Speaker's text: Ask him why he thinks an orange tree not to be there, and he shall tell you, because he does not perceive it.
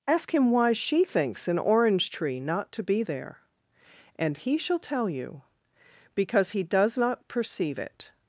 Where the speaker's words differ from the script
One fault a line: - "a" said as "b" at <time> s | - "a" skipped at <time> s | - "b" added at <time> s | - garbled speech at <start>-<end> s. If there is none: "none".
- "he" said as "she" at 0.7 s